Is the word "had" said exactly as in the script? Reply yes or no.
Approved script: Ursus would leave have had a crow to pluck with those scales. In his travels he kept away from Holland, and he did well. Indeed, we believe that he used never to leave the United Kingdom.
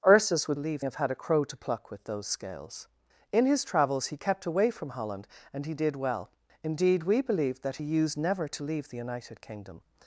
yes